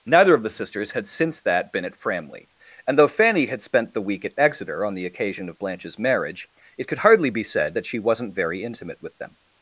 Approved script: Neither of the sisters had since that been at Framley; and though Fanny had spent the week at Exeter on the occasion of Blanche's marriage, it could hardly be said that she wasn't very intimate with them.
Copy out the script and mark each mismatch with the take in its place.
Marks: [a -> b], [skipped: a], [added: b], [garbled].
Neither of the sisters had since that been at Framley; and though Fanny had spent the week at Exeter on the occasion of Blanche's marriage, it could hardly be said that she wasn't very intimate with them.